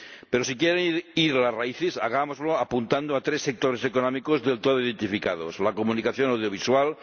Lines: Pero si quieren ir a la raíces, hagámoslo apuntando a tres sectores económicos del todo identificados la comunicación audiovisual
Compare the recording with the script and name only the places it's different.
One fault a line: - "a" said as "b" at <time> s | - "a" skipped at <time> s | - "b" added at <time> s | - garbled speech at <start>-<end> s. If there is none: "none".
- "la" said as "las" at 1.4 s